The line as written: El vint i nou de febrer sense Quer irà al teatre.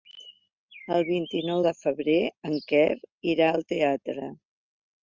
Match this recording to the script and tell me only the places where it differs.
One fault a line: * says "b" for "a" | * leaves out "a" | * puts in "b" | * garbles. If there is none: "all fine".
* says "en" for "sense"